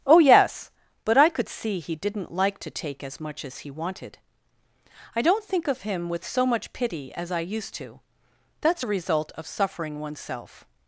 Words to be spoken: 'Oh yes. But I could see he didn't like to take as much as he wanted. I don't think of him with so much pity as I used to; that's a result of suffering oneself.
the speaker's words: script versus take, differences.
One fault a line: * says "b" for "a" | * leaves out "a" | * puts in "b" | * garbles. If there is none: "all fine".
all fine